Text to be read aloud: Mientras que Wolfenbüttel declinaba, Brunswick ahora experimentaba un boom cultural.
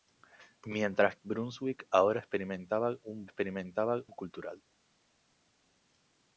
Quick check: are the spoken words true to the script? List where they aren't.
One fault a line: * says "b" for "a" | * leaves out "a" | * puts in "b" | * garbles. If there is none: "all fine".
* leaves out "que Wolfenbüttel declinaba"
* says "experimentaba" for "boom"